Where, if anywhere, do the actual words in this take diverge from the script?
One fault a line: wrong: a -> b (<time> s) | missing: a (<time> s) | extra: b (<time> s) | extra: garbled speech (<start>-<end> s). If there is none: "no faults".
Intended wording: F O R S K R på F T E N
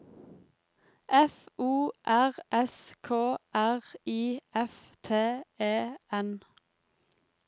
wrong: på -> I (4.1 s)